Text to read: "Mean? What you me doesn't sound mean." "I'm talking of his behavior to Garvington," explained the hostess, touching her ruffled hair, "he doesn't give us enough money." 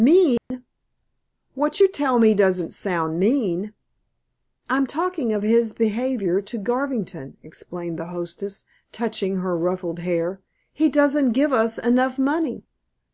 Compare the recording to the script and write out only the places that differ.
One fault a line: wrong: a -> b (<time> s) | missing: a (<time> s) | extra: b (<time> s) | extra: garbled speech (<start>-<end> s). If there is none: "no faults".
extra: tell (1.9 s)